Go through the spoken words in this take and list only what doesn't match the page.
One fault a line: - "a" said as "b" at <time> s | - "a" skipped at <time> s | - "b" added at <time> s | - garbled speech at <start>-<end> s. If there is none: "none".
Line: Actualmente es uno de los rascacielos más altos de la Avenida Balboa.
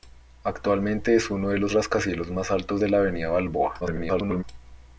- garbled speech at 3.8-4.4 s